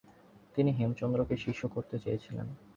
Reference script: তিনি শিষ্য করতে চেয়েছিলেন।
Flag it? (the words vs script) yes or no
yes